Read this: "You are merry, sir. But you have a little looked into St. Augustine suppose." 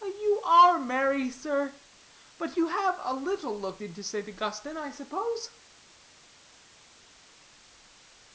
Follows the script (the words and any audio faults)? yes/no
no